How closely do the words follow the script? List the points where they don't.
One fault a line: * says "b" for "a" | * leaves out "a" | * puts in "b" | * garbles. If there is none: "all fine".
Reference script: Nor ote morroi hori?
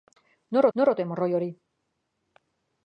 * puts in "nor"